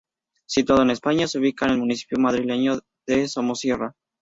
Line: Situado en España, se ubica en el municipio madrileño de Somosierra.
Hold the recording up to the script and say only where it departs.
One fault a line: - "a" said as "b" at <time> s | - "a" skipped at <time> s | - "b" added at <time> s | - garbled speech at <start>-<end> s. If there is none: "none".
none